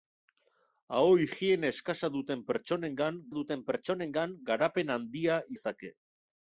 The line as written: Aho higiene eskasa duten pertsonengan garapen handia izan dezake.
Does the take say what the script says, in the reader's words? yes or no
no